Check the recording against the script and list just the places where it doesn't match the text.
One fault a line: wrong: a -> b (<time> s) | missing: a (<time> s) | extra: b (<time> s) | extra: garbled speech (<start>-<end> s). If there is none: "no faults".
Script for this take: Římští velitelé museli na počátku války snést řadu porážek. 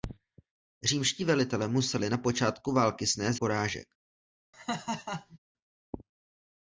missing: řadu (3.4 s)